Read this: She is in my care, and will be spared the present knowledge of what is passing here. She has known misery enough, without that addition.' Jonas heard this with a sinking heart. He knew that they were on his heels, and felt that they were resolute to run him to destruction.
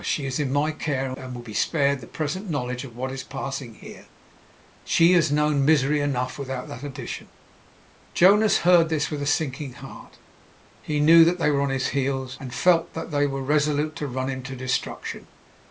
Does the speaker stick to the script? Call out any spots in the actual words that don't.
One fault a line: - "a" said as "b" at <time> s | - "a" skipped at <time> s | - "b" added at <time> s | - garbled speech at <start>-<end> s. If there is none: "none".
none